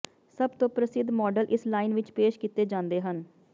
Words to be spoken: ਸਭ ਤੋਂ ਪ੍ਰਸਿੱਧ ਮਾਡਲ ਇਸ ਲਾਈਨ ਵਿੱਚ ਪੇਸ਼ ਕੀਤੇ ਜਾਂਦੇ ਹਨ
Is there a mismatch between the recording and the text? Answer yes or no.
no